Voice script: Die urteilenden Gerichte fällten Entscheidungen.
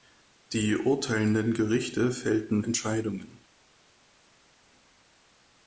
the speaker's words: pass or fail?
pass